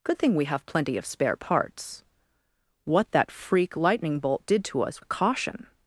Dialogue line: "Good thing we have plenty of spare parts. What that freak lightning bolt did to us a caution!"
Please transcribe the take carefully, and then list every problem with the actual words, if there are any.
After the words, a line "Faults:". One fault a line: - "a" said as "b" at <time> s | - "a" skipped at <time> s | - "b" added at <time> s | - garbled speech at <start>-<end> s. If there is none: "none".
"Good thing we have plenty of spare parts. What that freak lightning bolt did to us a caution!"
Faults:
none